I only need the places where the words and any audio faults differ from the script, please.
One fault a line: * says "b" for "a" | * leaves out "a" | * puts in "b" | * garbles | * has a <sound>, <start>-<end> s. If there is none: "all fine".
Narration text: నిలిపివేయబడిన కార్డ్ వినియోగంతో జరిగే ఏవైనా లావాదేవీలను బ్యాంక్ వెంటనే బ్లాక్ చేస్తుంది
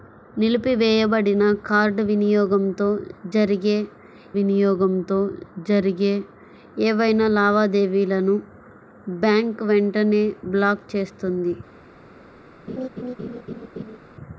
* puts in "వినియోగంతో జరిగే"
* has a laugh, 12.7-14.0 s